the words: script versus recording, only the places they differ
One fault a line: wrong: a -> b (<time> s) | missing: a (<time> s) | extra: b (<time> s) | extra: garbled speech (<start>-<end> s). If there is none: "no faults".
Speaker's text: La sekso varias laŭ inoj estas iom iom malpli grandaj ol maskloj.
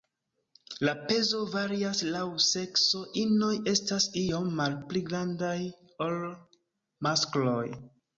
wrong: sekso -> pezo (1.1 s)
extra: sekso (2.5 s)
missing: iom (4.5 s)